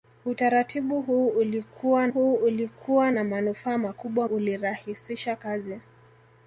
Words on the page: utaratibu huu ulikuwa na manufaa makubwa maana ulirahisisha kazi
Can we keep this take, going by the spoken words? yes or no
no